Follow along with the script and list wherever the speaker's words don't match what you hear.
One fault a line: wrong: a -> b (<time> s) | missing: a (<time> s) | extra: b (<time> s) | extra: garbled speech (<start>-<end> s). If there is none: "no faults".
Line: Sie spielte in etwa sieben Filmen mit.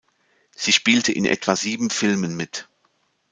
no faults